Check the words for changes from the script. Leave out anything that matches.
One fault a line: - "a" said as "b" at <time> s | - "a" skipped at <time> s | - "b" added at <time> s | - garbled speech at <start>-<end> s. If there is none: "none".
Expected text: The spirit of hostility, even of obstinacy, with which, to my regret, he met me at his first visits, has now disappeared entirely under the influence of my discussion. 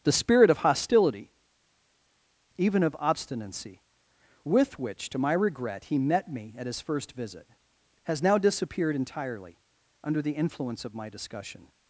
- "visits" said as "visit" at 7.1 s